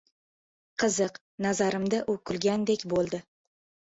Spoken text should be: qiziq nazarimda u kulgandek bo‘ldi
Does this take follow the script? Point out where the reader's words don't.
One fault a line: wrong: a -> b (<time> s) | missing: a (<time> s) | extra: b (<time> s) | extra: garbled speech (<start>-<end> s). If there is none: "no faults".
no faults